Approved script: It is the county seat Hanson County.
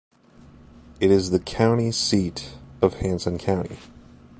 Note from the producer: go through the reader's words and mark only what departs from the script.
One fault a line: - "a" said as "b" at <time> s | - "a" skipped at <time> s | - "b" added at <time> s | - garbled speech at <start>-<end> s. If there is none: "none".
- "of" added at 2.8 s